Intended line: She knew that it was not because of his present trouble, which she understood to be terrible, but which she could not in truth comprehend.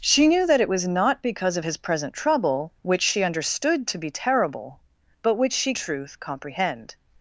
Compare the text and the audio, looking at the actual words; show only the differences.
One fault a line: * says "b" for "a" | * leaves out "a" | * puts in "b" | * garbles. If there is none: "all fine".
* leaves out "could not in"